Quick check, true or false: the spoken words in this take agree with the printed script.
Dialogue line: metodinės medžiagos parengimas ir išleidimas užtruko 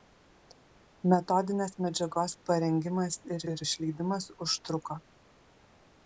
false